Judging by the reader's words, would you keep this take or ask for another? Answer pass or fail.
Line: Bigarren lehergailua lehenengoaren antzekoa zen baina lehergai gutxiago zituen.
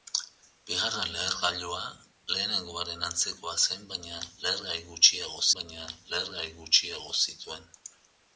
fail